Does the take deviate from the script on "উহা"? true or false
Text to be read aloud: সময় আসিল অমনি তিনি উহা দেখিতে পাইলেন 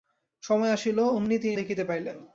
true